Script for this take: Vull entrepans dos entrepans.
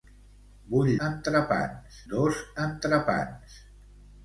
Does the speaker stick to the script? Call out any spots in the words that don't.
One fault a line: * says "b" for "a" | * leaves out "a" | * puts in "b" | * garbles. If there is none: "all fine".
all fine